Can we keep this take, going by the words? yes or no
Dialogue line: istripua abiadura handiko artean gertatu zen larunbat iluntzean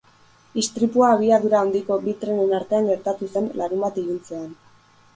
no